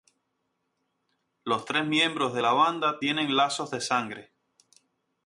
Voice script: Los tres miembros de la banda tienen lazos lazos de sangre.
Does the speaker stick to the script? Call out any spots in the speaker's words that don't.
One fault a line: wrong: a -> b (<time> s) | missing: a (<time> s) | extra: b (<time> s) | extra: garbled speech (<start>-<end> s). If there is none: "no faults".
missing: lazos (3.7 s)